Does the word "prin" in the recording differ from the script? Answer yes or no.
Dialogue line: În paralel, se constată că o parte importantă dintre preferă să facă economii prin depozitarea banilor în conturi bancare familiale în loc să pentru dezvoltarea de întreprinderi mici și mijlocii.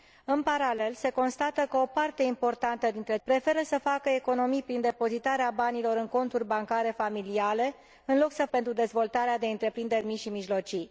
no